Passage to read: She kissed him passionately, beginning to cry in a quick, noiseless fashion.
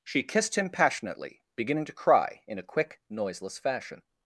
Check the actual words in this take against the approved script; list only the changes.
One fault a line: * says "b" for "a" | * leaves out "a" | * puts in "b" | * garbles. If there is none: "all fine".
all fine